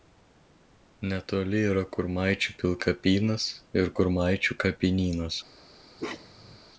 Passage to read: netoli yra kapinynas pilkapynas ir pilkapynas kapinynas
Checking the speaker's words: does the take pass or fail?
fail